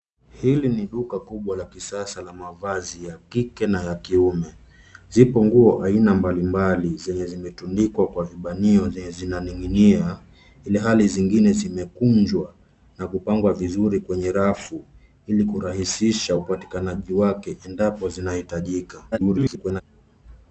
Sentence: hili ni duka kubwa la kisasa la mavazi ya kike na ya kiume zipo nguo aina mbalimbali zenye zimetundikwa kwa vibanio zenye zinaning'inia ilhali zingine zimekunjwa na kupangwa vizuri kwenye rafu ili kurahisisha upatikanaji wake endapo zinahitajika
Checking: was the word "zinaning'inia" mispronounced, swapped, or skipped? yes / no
no